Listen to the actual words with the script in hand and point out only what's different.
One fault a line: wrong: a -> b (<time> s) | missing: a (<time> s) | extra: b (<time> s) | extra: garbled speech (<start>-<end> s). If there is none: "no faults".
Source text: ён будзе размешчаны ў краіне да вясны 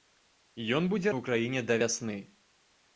missing: размешчаны (1.1 s)